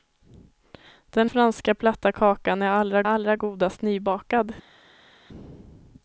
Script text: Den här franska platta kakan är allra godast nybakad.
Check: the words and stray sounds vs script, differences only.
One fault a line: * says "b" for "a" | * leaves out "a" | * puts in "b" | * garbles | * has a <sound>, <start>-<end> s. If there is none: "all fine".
* leaves out "här"
* puts in "allra"